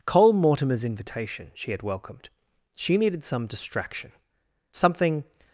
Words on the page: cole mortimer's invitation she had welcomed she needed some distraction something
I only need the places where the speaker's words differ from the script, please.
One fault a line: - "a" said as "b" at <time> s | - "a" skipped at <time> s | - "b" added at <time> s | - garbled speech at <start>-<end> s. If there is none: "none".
none